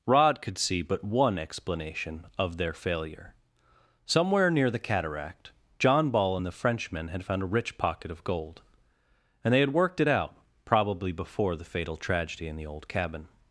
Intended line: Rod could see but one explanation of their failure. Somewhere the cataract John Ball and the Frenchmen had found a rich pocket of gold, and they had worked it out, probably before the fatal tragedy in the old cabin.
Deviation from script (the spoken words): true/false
true